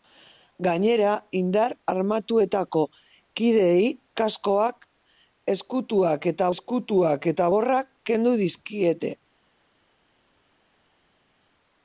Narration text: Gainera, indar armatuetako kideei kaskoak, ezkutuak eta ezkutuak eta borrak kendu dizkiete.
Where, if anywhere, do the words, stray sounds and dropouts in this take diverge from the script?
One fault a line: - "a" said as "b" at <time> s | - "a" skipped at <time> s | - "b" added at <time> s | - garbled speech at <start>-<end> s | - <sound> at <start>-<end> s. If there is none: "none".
none